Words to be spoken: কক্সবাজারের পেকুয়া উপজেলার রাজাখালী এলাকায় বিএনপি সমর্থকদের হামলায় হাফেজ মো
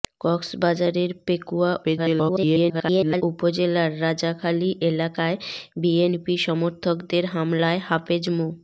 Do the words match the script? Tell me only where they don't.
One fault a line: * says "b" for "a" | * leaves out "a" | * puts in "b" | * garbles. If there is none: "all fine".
* garbles